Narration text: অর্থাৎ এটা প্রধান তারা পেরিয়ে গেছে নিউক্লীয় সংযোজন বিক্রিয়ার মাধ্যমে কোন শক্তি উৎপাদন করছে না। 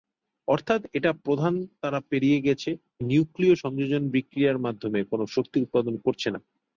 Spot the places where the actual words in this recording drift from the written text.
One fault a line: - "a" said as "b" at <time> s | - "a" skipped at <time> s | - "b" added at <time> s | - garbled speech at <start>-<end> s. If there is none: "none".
none